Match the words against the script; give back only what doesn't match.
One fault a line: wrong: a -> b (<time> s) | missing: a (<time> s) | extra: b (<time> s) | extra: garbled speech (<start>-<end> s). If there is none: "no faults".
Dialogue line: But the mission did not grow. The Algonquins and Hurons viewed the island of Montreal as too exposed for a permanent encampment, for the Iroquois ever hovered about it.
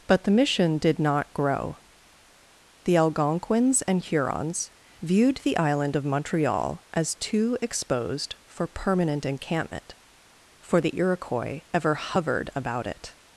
missing: a (8.7 s)